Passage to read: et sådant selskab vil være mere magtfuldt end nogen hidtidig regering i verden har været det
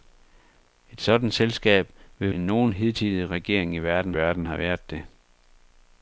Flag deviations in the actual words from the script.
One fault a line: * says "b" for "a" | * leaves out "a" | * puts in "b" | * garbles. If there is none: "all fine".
* leaves out "være mere magtfuldt"
* puts in "verden"